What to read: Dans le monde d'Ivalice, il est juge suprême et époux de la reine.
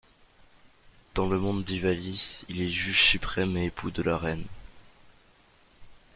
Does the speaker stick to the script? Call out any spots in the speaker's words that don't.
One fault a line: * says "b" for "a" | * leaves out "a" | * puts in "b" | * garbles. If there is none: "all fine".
all fine